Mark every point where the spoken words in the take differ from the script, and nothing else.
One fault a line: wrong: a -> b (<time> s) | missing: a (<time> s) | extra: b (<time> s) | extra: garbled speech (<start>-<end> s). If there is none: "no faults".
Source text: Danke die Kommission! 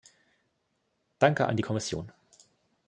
extra: an (1.4 s)